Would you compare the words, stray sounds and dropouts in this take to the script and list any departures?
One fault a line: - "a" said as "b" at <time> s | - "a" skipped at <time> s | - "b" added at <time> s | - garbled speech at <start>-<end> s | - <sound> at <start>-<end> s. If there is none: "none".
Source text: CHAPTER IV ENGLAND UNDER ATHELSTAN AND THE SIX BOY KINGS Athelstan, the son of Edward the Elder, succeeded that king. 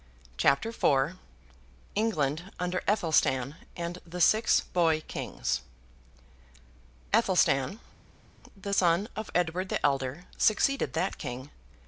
none